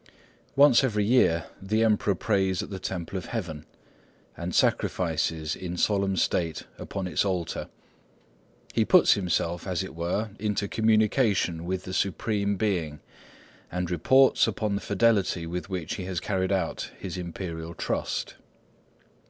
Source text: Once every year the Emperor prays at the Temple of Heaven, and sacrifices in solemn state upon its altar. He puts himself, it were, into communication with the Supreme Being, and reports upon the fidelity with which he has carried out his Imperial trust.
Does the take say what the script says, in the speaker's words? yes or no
no